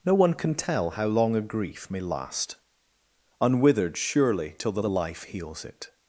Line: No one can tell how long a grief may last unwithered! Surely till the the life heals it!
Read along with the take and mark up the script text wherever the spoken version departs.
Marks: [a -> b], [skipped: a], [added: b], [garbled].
No one can tell how long a grief may last unwithered! Surely till the the life heals it!